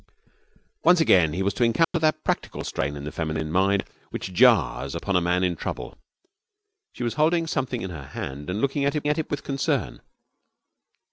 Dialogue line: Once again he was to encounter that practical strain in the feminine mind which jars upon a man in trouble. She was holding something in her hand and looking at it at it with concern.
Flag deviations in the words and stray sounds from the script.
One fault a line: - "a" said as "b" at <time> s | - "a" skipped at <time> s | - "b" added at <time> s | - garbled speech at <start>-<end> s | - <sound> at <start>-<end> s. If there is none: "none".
- dropout at 1.8-1.9 s